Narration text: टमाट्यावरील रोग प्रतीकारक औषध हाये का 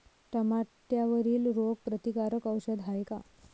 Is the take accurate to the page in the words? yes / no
yes